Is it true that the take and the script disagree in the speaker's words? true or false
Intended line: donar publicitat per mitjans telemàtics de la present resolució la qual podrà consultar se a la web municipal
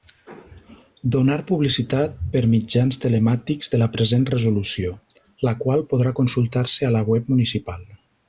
false